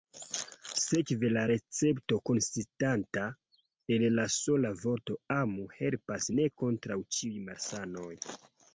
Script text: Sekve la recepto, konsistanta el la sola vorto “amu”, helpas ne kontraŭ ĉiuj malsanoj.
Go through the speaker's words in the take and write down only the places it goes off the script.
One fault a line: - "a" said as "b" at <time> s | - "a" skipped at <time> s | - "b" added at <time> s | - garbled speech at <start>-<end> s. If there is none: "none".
none